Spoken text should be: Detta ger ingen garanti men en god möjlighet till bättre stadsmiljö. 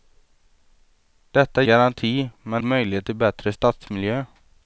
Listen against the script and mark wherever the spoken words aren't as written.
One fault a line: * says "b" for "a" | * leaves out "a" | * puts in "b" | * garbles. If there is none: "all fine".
* leaves out "ger ingen"
* leaves out "en god"